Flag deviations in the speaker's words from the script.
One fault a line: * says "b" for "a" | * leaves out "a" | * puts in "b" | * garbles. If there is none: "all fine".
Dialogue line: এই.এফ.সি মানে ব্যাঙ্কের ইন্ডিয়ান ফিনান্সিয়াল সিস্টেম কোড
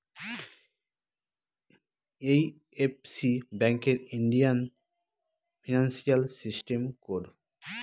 * leaves out "মানে"